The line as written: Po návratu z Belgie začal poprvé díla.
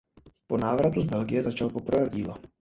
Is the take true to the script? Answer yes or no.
yes